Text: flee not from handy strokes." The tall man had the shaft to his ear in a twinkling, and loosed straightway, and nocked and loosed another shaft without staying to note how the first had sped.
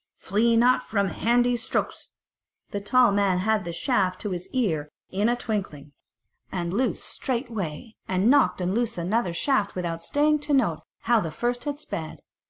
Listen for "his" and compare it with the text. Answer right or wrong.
right